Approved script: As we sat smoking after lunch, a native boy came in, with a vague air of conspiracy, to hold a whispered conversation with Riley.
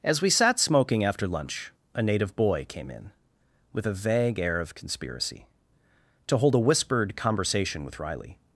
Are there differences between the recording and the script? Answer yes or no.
no